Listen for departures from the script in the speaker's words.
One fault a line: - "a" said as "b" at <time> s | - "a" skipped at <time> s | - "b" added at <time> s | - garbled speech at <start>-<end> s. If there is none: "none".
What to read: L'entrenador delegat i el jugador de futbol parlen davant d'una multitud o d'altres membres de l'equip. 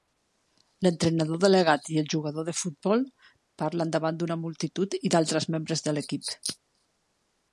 - "o" said as "i" at 5.0 s